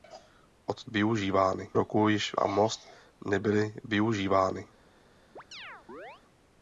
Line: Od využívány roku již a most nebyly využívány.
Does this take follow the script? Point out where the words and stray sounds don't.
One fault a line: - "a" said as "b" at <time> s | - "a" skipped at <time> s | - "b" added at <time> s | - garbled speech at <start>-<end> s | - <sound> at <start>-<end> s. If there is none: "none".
- chirp at 5.4-6.2 s